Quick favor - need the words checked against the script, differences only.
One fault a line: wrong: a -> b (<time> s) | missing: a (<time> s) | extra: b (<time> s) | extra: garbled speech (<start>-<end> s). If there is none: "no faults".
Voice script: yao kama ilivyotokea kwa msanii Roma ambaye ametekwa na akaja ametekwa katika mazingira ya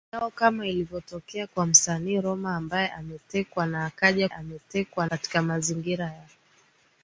no faults